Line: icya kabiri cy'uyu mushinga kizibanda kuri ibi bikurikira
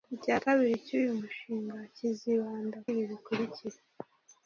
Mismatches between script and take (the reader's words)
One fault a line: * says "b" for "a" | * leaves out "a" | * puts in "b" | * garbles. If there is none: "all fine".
* leaves out "kuri"